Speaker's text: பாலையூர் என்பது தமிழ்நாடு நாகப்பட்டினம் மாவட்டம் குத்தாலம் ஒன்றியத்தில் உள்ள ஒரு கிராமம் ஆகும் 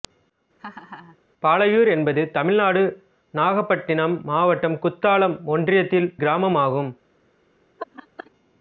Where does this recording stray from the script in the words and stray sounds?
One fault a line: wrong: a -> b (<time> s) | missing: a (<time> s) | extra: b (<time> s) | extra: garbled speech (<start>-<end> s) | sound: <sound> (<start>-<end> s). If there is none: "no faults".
sound: laugh (0.6-1.2 s)
missing: உள்ள ஒரு (6.1 s)
sound: laugh (7.8-8.3 s)